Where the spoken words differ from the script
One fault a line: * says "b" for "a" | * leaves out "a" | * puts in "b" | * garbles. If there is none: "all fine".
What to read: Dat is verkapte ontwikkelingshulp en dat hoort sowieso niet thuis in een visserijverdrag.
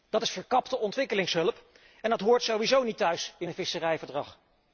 all fine